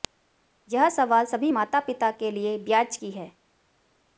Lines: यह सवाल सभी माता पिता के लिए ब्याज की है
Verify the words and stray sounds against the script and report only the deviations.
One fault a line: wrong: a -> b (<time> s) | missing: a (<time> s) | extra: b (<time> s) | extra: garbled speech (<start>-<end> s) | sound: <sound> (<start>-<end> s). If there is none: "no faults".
no faults